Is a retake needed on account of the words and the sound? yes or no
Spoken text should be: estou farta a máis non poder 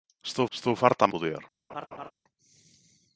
yes